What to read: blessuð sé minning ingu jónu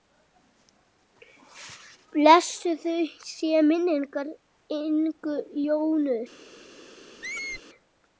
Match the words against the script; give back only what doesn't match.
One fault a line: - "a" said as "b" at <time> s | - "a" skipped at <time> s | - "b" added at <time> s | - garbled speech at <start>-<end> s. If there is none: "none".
none